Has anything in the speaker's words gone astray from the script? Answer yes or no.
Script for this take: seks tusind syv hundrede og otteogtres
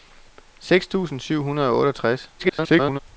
yes